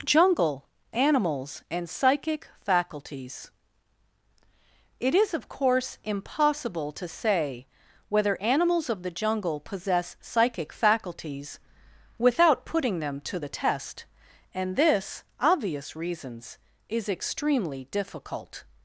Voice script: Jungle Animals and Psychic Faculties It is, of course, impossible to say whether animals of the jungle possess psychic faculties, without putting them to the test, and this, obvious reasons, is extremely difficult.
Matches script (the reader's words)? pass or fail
pass